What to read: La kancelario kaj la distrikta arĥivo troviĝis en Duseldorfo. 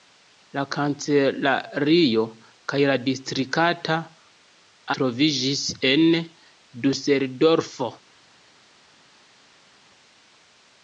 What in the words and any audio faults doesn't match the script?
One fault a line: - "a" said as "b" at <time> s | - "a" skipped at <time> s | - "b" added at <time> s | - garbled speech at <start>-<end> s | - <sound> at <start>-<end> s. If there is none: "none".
- "arĥivo" skipped at 4.0 s